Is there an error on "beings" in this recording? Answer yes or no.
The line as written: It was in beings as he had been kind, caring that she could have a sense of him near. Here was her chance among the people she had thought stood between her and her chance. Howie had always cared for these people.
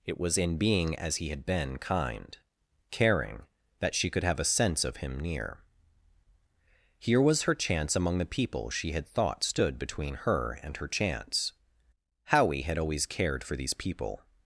yes